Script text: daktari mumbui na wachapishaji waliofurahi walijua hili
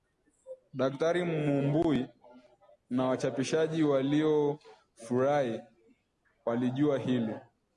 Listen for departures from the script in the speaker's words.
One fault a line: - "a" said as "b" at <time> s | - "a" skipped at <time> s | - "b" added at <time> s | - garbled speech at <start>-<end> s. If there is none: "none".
none